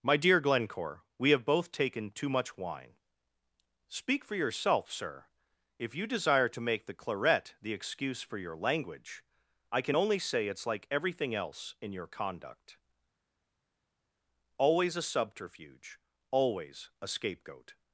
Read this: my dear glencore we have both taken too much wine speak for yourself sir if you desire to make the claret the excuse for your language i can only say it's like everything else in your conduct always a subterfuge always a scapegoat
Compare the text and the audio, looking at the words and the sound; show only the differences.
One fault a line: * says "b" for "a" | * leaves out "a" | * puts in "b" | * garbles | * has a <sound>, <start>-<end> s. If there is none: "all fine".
all fine